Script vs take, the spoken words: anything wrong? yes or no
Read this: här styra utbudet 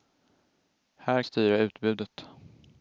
no